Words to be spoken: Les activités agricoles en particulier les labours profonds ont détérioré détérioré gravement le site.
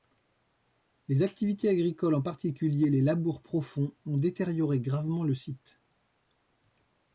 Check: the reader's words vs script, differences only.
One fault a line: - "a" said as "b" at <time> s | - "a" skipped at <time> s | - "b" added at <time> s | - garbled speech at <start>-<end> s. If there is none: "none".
- "détérioré" skipped at 4.8 s